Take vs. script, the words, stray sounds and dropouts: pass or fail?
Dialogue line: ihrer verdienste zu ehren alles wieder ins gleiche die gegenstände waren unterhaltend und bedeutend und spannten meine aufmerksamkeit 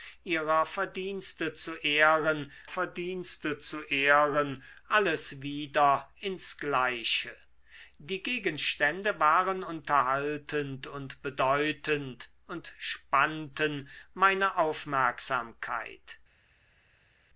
fail